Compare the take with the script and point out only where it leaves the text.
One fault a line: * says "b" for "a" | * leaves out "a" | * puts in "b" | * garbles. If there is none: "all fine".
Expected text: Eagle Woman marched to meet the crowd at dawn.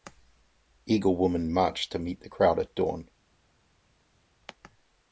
all fine